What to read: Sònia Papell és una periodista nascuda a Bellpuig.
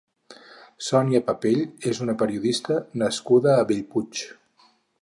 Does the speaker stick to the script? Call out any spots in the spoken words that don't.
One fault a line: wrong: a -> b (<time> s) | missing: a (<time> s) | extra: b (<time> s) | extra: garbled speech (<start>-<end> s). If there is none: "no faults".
no faults